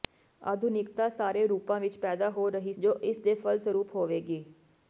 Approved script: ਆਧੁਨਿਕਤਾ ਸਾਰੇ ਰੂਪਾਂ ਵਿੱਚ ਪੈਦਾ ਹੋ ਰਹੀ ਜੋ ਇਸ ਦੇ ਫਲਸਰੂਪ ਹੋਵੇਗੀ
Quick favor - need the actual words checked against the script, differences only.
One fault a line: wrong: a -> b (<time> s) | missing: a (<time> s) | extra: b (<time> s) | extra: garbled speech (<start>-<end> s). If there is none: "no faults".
no faults